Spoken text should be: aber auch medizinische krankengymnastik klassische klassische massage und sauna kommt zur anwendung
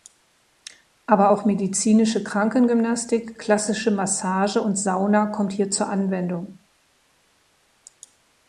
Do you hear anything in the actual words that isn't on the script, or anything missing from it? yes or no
yes